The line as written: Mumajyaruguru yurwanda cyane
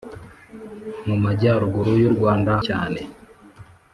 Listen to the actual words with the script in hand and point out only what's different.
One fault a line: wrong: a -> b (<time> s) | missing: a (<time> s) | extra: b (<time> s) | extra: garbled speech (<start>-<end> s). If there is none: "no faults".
no faults